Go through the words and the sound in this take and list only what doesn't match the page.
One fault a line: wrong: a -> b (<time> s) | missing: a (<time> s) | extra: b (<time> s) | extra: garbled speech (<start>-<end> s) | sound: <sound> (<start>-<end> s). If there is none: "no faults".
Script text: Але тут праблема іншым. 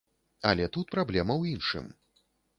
extra: ў (1.4 s)